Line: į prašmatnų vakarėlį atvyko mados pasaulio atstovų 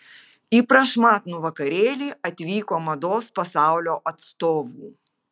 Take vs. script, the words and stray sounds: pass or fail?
pass